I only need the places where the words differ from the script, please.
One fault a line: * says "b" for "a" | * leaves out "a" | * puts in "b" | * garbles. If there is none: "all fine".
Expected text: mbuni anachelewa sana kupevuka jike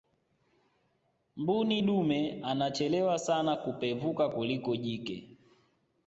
* puts in "dume"
* puts in "kuliko"